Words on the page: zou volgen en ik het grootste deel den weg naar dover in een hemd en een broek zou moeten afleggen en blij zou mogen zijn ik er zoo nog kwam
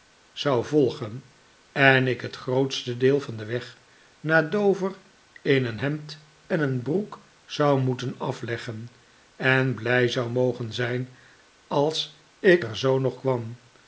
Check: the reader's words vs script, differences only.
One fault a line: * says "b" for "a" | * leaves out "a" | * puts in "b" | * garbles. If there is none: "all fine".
* puts in "van"
* puts in "als"